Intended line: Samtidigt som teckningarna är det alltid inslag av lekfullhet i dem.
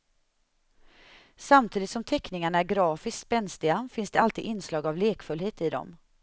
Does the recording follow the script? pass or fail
fail